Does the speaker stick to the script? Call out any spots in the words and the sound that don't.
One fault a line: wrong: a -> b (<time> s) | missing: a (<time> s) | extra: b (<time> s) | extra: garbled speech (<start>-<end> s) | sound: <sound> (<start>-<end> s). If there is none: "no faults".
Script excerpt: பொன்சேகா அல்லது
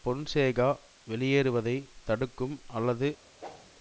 extra: வெளியேறுவதை தடுக்கும் (1.1 s)
sound: whoosh (3.4-3.7 s)